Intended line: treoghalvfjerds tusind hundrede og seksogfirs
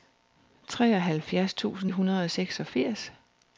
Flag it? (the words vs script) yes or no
no